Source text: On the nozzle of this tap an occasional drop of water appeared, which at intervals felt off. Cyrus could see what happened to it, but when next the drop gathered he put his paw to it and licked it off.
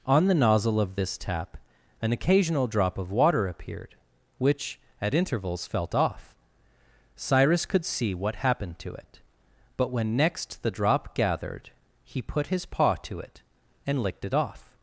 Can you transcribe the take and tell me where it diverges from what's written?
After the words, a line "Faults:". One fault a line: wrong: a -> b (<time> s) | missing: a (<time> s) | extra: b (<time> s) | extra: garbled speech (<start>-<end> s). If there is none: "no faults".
On the nozzle of this tap an occasional drop of water appeared, which at intervals felt off. Cyrus could see what happened to it, but when next the drop gathered he put his paw to it and licked it off.
Faults:
no faults